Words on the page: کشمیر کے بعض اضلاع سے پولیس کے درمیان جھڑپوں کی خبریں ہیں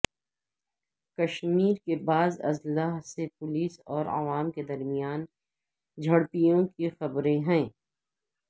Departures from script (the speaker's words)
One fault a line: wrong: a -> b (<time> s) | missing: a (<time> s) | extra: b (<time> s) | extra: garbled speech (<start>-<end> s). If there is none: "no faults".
extra: اور عوام (3.9 s)